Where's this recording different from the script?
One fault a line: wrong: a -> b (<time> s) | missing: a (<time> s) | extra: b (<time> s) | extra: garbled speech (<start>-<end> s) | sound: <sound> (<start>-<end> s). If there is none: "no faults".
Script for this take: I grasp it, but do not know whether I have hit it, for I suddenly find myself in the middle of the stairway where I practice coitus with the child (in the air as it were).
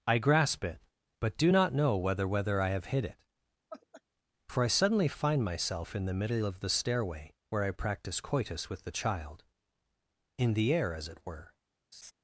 extra: whether (2.3 s)
sound: laugh (3.7-4.0 s)
sound: laugh (11.9-12.1 s)